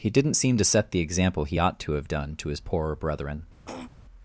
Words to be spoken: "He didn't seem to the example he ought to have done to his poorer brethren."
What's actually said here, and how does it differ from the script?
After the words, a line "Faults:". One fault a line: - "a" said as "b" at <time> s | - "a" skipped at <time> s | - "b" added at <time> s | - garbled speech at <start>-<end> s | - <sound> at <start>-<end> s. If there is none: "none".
"He didn't seem to set the example he ought to have done to his poorer brethren."
Faults:
- "set" added at 0.6 s
- throat clearing at 3.7-3.9 s